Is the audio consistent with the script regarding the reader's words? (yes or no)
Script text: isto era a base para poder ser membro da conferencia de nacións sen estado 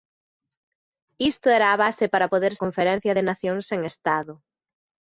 no